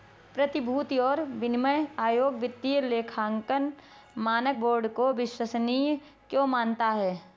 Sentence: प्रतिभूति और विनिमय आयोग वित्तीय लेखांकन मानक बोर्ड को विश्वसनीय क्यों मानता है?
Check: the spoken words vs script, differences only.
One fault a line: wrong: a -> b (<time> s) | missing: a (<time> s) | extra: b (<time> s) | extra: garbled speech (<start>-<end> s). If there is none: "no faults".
no faults